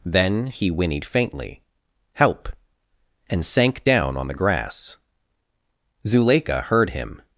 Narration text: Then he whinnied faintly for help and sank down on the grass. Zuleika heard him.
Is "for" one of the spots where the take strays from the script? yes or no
yes